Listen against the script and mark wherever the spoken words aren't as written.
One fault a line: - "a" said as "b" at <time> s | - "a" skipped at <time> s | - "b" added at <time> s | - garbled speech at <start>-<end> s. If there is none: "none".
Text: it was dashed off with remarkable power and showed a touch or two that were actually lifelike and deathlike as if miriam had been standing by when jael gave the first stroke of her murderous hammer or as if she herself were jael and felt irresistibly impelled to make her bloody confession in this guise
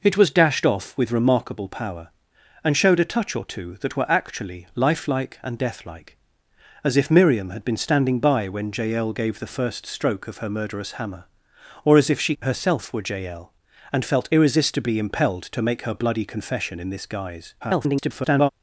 - garbled speech at 17.6-18.5 s